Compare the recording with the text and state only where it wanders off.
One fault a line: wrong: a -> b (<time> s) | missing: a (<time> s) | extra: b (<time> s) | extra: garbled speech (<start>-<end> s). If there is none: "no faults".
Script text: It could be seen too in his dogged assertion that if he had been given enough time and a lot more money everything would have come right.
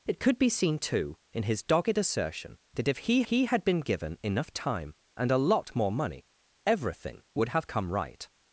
extra: he (3.2 s)